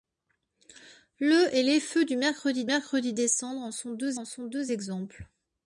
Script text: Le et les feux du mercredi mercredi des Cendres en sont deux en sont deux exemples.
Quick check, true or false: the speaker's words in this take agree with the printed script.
true